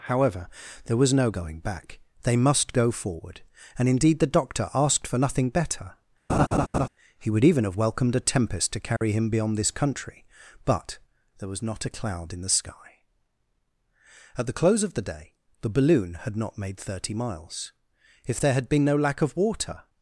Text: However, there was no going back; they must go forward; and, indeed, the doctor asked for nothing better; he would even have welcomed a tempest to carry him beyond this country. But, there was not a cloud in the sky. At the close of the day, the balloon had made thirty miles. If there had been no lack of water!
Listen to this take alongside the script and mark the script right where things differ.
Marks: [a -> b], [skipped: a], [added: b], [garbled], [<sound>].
However, there was no going back; they must go forward; and, indeed, the doctor asked for nothing better; [laugh] he would even have welcomed a tempest to carry [dropout] him beyond this country. But, there was not a cloud in the sky. At the close of the day, the balloon had [added: not] made thirty miles. If there had been no lack of water!